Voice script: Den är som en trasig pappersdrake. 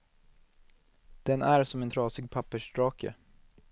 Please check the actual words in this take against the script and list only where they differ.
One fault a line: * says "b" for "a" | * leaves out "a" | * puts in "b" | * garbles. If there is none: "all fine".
all fine